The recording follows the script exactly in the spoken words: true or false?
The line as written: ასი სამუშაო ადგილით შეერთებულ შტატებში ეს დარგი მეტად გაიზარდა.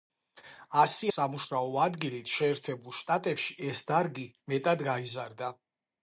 true